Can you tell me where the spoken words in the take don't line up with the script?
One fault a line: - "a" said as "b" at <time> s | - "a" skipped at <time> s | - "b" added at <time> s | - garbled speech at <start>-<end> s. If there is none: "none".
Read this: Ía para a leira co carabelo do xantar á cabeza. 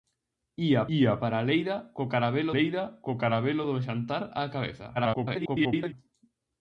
- "ía" added at 1.0 s
- "leira co carabelo" added at 2.6 s
- garbled speech at 4.9-5.9 s